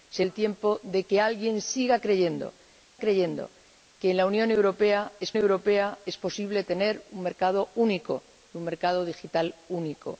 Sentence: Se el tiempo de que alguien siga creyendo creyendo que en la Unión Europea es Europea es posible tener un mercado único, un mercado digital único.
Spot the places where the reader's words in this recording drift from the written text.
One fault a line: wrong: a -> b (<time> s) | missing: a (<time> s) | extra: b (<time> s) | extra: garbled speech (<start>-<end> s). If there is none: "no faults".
no faults